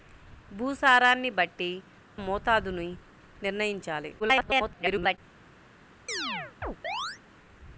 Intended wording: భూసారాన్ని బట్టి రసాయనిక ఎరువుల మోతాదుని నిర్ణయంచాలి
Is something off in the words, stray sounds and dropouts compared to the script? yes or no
yes